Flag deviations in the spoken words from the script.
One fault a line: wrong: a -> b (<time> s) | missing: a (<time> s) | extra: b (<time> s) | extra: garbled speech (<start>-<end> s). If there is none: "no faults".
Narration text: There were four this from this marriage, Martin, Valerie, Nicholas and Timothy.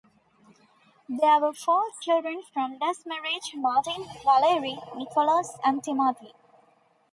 wrong: this -> children (2.0 s)